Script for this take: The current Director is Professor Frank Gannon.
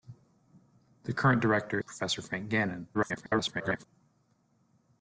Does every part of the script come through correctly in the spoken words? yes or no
no